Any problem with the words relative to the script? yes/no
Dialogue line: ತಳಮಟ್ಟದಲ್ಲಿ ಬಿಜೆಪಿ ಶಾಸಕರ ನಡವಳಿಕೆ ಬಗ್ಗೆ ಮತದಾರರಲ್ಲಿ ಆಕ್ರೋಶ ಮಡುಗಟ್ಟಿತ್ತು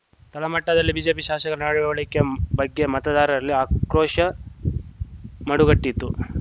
no